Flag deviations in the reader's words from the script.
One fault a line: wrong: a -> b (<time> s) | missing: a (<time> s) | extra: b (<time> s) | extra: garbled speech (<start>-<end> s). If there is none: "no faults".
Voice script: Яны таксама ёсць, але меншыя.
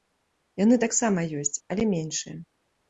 no faults